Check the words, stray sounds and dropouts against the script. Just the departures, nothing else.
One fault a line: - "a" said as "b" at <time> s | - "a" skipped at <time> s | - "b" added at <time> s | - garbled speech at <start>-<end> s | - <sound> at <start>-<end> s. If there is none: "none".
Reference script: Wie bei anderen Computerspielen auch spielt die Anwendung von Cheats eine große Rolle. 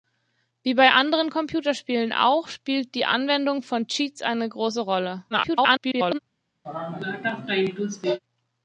- garbled speech at 5.3-6.2 s
- sneeze at 6.6-8.2 s